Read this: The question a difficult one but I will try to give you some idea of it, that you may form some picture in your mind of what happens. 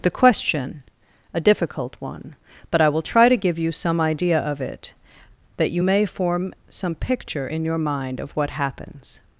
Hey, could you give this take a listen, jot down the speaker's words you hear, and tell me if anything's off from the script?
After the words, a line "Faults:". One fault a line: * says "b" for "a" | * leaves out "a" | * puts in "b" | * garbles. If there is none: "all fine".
The question a difficult one but I will try to give you some idea of it, that you may form some picture in your mind of what happens.
Faults:
all fine